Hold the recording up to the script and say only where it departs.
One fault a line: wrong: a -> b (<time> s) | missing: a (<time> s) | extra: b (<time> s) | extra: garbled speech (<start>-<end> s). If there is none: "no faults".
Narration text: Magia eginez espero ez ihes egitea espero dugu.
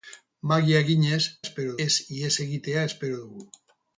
no faults